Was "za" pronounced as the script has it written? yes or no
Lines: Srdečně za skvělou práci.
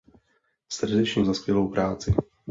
yes